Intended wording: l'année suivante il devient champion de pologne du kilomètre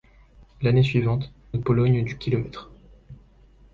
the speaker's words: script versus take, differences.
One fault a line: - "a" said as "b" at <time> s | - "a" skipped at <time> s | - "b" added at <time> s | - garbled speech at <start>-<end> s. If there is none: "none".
- "il devient champion" skipped at 1.3 s